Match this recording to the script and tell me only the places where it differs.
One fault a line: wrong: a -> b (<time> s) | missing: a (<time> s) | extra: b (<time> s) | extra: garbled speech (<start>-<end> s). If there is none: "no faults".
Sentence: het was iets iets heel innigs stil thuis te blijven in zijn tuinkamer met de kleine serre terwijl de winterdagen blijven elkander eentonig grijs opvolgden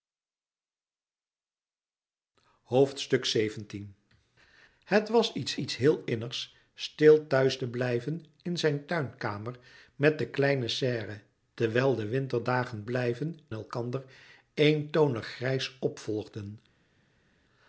no faults